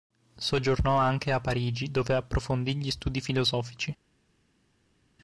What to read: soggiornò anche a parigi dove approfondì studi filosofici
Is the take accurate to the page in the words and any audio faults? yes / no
no